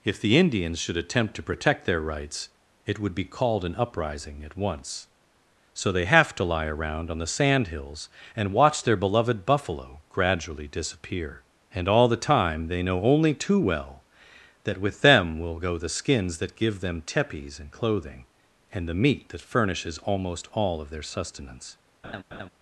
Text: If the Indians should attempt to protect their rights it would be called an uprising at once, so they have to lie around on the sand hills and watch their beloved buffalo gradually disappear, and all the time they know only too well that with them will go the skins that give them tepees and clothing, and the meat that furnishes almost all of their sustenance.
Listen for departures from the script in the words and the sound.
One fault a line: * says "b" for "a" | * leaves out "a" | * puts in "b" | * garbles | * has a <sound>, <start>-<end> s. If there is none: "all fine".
* has a laugh, 22.0-22.5 s